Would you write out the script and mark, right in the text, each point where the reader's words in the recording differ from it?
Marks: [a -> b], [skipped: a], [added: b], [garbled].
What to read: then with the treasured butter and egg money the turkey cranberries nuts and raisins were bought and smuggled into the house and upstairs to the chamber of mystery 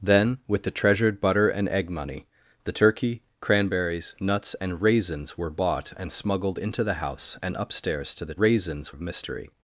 then with the treasured butter and egg money the turkey cranberries nuts and raisins were bought and smuggled into the house and upstairs to the [chamber -> raisins] of mystery